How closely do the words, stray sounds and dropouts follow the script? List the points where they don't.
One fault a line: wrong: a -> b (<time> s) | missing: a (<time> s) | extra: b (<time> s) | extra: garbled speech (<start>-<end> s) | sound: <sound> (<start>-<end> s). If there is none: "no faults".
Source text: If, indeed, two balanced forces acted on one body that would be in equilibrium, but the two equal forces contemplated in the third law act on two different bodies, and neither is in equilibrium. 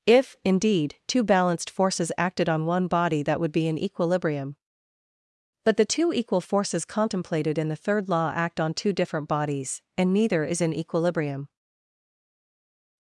no faults